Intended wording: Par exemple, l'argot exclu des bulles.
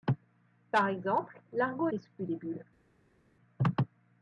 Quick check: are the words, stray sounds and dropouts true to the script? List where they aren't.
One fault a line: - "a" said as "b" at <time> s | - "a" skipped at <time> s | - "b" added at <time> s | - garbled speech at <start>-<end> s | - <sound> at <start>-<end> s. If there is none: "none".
none